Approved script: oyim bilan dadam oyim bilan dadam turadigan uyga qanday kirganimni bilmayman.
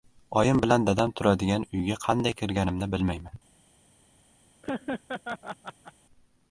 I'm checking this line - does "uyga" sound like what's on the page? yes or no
yes